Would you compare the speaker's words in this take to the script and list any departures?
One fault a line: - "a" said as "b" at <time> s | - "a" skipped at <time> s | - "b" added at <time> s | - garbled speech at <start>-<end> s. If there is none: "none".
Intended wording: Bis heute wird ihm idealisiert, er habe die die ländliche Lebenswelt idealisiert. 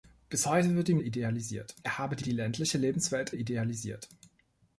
none